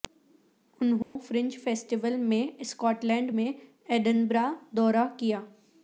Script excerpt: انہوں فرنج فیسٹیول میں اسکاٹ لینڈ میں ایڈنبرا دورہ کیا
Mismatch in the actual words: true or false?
false